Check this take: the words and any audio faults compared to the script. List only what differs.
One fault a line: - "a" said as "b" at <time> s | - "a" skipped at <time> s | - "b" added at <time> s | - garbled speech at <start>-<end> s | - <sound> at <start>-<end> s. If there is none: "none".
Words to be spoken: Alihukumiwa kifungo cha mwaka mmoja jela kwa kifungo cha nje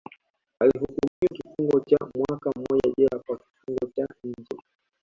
- dropout at 1.1-1.2 s